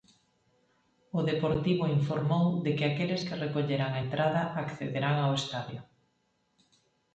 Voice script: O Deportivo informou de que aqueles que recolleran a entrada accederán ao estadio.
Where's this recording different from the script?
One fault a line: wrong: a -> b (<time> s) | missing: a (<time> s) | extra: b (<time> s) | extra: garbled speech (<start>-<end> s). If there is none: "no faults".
no faults